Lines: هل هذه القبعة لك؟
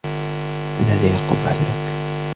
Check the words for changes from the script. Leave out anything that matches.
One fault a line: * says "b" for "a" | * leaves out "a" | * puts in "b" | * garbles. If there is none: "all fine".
all fine